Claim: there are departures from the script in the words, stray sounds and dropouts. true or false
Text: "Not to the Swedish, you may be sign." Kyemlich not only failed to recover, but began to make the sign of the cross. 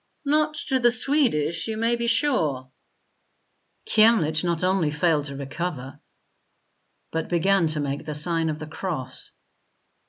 true